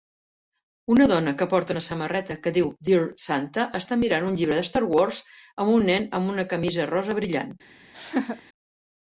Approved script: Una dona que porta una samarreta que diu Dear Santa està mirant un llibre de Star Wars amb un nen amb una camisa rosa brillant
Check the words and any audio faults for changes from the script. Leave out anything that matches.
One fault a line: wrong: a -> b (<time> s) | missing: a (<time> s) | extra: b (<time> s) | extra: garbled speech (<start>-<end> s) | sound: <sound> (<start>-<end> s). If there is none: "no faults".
sound: laugh (7.9-8.4 s)